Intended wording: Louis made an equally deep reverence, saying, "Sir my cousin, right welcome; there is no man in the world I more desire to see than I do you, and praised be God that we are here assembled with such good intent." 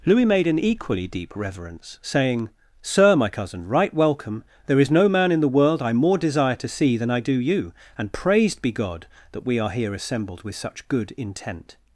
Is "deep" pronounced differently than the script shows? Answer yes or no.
no